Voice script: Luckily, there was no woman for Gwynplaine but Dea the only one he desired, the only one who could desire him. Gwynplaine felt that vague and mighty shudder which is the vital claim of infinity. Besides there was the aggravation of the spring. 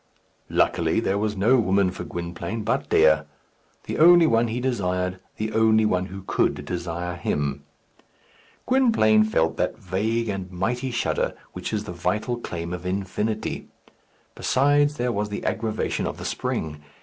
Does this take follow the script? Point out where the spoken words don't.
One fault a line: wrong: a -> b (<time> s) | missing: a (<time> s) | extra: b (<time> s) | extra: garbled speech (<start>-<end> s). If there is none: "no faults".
no faults